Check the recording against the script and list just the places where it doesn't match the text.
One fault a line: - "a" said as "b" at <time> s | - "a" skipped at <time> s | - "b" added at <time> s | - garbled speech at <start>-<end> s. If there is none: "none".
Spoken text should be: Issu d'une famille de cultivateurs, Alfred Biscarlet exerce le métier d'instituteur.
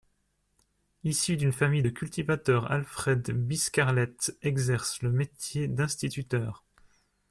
none